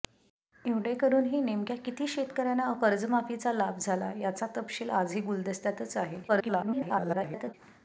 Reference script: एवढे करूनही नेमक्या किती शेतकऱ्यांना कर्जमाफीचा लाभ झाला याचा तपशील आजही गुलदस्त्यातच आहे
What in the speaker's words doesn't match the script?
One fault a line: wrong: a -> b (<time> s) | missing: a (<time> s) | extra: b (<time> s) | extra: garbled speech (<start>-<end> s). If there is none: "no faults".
extra: garbled speech (6.3-7.5 s)